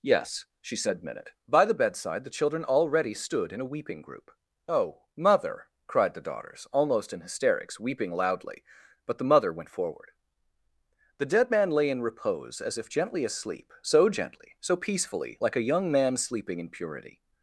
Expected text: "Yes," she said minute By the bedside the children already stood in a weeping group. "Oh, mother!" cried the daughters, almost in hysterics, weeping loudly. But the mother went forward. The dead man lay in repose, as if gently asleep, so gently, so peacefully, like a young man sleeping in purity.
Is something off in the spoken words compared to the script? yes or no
no